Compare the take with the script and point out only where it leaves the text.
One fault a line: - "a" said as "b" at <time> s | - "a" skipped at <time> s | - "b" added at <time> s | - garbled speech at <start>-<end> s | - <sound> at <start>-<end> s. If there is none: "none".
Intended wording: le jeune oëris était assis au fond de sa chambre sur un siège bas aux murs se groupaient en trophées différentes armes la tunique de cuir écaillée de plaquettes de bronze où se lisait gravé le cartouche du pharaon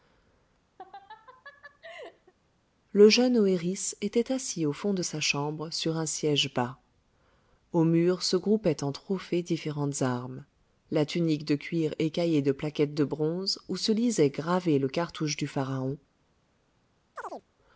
- laugh at 0.8-2.3 s
- chirp at 17.2-17.5 s